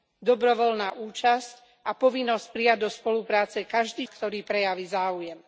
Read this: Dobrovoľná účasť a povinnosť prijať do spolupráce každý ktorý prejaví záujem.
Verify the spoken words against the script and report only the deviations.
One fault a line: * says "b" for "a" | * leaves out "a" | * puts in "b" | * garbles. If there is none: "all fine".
all fine